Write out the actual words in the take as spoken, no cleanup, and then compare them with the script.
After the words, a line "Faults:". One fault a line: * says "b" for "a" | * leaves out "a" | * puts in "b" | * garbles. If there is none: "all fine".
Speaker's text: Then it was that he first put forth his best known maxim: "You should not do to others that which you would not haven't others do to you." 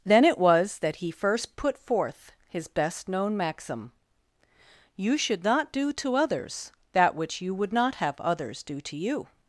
Then it was that he first put forth his best known maxim: "You should not do to others that which you would not have others do to you."
Faults:
* says "have" for "haven't"